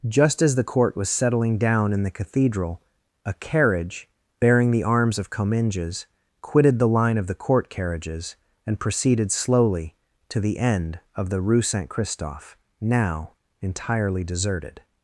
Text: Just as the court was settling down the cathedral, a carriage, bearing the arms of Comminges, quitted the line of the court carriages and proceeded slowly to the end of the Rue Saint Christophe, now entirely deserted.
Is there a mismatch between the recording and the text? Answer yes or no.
yes